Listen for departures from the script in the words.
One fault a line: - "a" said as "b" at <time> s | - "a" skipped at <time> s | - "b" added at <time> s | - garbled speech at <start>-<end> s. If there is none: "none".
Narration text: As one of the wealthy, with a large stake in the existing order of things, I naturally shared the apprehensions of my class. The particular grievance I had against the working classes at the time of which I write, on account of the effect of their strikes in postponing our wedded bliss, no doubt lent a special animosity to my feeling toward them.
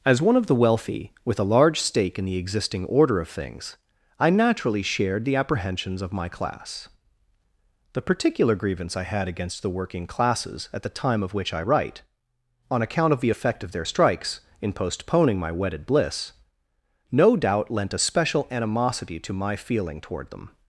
- "our" said as "my" at 15.4 s